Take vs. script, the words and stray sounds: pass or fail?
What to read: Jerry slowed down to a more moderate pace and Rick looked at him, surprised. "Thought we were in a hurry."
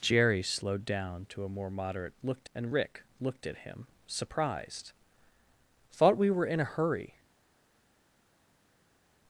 fail